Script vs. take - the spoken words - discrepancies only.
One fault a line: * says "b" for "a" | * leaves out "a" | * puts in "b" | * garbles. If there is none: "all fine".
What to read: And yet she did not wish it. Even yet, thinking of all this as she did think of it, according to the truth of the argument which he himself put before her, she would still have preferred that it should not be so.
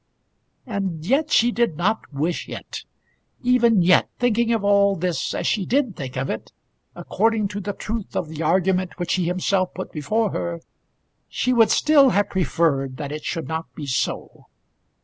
all fine